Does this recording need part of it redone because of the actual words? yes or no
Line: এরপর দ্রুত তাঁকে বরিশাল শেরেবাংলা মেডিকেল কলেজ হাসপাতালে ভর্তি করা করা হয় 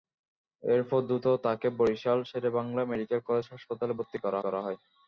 no